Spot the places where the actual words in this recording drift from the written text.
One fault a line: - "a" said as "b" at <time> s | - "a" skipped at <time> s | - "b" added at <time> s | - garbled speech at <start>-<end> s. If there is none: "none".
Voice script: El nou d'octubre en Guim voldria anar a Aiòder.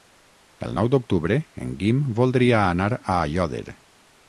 none